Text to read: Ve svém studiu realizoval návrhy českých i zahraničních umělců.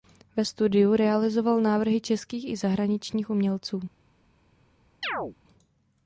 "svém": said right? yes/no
no